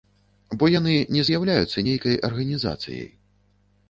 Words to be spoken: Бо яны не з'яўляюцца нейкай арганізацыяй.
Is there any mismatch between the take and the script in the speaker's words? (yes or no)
no